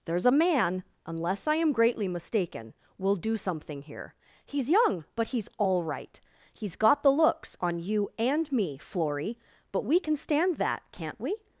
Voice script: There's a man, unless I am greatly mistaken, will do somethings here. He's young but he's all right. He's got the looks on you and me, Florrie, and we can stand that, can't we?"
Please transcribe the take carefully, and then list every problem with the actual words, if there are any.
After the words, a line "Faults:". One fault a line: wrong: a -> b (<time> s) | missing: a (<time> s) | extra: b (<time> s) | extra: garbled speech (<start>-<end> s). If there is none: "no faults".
There's a man, unless I am greatly mistaken, will do something here. He's young but he's all right. He's got the looks on you and me, Florrie, but we can stand that, can't we?"
Faults:
wrong: somethings -> something (3.4 s)
wrong: and -> but (9.7 s)